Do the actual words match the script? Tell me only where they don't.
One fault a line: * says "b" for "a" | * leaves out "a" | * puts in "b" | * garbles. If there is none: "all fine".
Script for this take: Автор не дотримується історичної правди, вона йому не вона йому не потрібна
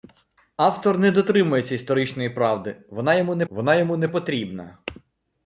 all fine